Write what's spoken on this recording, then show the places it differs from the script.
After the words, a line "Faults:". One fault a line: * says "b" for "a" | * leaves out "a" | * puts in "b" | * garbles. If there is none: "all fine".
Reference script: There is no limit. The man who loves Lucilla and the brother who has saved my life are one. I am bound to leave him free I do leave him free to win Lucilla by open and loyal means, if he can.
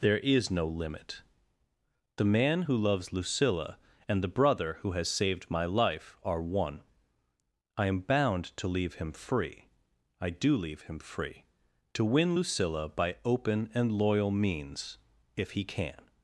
There is no limit. The man who loves Lucilla and the brother who has saved my life are one. I am bound to leave him free I do leave him free to win Lucilla by open and loyal means, if he can.
Faults:
all fine